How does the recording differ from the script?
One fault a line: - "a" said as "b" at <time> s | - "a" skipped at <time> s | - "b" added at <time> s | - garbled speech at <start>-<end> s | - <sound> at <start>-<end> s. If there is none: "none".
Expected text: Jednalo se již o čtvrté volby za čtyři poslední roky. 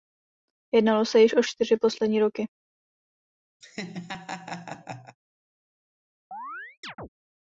- "čtvrté volby za" skipped at 1.4 s
- laugh at 3.6-5.2 s
- chirp at 6.3-7.1 s